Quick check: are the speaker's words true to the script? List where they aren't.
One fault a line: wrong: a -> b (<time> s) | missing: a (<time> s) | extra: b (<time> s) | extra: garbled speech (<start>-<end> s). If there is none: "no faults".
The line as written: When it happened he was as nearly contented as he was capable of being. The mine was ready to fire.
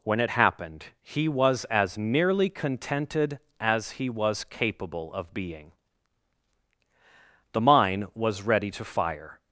no faults